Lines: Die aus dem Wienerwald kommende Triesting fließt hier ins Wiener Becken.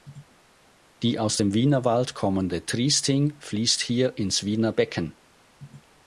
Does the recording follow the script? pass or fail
pass